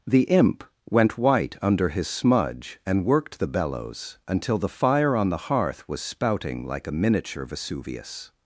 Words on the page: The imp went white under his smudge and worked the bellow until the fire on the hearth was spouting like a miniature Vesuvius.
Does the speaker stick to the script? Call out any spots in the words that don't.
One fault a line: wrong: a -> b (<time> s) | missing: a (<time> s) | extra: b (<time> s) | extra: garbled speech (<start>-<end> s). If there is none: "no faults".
wrong: bellow -> bellows (3.5 s)